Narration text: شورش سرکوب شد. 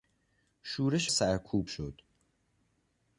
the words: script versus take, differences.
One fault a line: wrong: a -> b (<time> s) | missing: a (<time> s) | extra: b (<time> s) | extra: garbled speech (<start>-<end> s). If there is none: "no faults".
no faults